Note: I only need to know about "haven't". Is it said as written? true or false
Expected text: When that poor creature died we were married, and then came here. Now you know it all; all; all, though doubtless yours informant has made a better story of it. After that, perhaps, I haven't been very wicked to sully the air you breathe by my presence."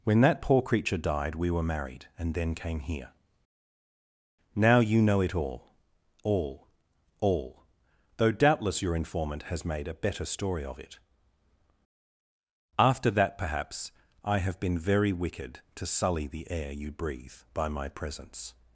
false